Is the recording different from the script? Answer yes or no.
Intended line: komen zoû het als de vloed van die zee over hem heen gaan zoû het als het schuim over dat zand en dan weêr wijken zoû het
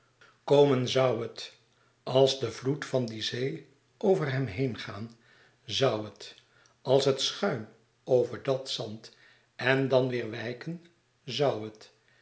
no